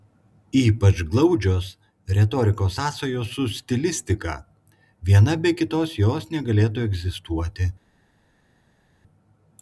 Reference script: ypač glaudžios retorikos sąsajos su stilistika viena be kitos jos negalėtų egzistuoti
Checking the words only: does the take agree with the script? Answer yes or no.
yes